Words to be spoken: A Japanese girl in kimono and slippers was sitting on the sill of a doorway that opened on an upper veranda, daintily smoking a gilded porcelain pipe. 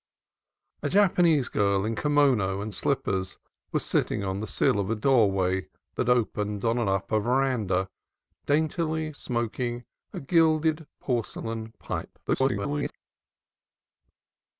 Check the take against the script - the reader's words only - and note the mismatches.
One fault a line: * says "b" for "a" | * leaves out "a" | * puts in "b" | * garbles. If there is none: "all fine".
* garbles